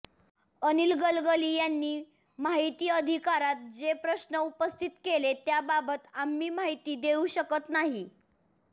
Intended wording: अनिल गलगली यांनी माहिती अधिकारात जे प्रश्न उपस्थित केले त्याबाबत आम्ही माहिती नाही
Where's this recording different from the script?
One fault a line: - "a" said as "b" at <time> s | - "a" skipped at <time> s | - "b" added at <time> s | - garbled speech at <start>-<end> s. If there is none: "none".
- "देऊ शकत" added at 7.0 s